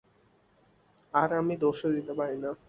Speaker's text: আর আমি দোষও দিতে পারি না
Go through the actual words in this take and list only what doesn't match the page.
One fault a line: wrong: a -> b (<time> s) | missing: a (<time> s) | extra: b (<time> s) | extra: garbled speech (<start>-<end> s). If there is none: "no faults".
no faults